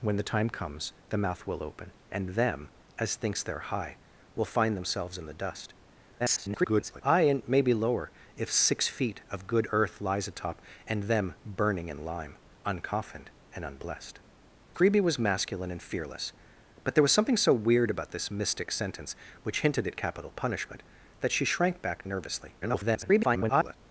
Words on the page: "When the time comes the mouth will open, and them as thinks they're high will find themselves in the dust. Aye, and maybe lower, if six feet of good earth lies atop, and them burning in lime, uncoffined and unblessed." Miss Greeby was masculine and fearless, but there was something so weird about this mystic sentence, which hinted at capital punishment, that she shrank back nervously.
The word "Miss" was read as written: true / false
false